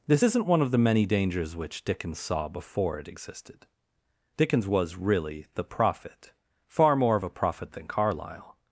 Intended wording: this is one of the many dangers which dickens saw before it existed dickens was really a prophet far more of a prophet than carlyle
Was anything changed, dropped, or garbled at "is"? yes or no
yes